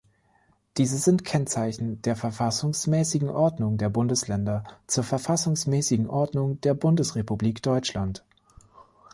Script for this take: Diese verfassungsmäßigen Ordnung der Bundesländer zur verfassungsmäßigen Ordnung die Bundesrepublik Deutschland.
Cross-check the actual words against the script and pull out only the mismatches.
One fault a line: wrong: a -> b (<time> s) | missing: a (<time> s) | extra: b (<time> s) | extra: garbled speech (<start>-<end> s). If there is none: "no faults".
extra: sind Kennzeichen der (1.0 s)
wrong: die -> der (6.6 s)